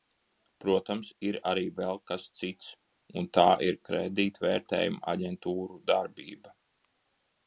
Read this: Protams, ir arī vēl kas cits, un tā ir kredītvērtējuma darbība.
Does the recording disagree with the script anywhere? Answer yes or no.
yes